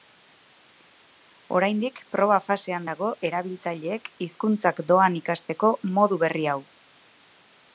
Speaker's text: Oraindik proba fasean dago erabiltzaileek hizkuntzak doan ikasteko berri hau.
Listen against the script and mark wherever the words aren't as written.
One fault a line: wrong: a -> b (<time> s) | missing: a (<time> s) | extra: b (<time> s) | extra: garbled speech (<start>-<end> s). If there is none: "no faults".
extra: modu (6.0 s)